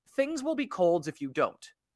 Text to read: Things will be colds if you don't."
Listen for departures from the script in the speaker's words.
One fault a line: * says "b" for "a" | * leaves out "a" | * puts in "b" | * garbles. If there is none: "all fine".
all fine